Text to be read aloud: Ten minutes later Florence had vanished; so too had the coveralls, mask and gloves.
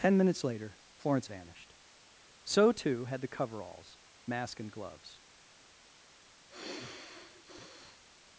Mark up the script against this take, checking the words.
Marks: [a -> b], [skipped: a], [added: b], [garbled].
Ten minutes later Florence [skipped: had] vanished; so too had the coveralls, mask and gloves.